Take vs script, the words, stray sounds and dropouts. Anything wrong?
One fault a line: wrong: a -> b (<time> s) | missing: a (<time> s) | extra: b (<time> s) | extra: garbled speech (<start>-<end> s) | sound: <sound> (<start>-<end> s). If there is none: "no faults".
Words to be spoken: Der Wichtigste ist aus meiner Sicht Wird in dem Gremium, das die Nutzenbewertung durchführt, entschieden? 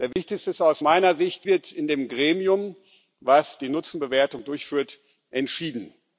sound: dropout (0.1-0.2 s)